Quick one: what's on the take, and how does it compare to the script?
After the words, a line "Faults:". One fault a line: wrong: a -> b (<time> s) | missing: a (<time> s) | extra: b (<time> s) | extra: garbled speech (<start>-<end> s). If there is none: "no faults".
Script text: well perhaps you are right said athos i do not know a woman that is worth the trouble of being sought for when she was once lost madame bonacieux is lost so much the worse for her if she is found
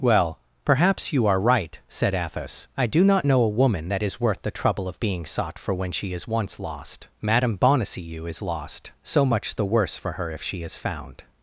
well perhaps you are right said athos i do not know a woman that is worth the trouble of being sought for when she is once lost madame bonacieux is lost so much the worse for her if she is found
Faults:
wrong: was -> is (6.1 s)